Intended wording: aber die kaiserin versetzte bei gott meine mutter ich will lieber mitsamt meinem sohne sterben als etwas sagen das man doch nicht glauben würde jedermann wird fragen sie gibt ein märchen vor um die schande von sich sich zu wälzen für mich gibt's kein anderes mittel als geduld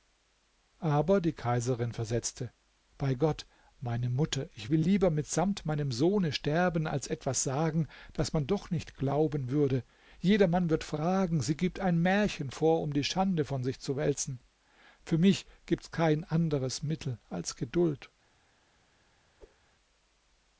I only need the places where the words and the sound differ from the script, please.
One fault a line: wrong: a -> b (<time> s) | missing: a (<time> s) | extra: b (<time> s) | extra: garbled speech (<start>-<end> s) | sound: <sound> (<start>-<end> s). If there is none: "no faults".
missing: sich (13.8 s)
sound: whoosh (19.4-19.6 s)